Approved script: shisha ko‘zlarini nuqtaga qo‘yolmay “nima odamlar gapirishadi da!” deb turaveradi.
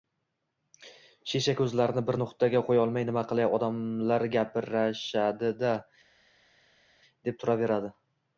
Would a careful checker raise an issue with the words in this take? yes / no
yes